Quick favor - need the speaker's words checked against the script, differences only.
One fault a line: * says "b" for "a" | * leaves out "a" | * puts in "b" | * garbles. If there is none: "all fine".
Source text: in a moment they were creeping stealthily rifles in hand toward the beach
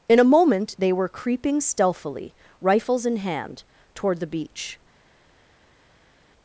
all fine